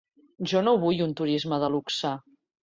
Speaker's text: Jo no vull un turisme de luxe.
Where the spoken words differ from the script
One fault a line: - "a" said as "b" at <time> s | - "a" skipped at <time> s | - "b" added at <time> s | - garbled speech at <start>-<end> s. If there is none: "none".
none